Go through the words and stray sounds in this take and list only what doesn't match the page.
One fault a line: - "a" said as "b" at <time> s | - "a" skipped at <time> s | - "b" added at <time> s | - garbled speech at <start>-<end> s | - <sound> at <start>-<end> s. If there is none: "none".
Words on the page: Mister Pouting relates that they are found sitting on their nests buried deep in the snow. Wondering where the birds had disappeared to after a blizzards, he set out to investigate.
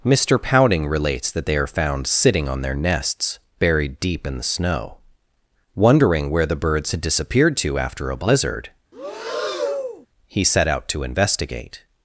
- "blizzards" said as "blizzard" at 8.2 s
- breath at 8.9-10.1 s